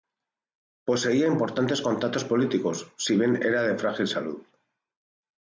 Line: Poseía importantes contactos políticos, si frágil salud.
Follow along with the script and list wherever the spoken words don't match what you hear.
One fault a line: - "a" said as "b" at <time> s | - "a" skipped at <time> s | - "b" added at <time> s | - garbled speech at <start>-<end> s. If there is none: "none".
- "bien era de" added at 3.2 s